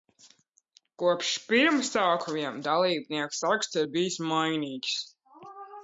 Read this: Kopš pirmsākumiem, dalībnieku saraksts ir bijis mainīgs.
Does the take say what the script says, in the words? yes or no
yes